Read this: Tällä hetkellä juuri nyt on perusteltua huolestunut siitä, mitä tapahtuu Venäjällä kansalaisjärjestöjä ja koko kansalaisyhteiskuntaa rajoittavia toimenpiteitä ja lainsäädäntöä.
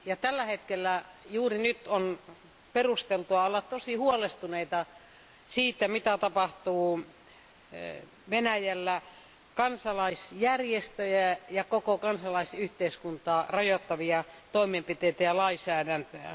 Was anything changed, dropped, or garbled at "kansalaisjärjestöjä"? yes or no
no